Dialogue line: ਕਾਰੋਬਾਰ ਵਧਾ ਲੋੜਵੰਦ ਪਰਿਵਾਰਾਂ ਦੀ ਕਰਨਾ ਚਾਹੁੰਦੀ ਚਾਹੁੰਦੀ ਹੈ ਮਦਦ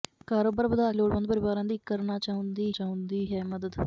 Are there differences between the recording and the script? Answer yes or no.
no